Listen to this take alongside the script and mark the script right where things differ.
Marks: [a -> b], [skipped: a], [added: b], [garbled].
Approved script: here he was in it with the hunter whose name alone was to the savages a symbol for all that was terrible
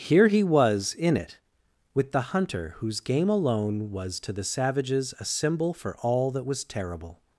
here he was in it with the hunter whose [name -> game] alone was to the savages a symbol for all that was terrible